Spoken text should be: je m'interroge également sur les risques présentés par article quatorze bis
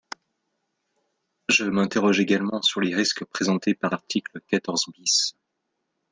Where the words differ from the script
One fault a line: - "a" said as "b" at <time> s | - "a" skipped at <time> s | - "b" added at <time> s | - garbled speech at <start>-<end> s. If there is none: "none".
none